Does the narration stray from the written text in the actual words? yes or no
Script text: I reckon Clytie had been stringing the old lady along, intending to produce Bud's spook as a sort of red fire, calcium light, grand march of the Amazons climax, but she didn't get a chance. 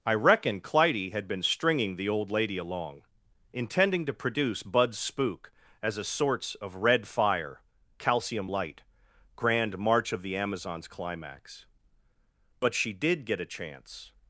yes